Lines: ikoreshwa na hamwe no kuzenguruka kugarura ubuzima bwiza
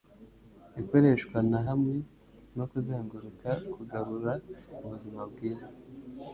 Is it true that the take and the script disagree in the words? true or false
false